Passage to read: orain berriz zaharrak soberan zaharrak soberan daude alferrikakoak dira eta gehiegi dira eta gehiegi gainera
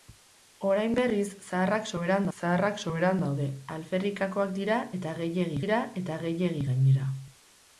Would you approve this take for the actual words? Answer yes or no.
yes